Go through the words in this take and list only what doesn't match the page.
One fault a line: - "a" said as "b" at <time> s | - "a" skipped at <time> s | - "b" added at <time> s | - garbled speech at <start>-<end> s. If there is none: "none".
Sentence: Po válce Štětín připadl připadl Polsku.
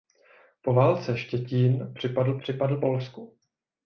none